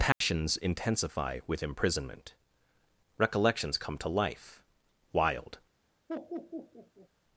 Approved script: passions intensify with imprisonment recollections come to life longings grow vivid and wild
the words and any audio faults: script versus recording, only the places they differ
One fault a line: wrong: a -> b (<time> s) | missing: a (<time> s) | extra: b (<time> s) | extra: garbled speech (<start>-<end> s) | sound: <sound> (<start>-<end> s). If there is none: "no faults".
sound: dropout (0.1-0.2 s)
missing: longings grow vivid and (4.6 s)
sound: laugh (6.1-7.1 s)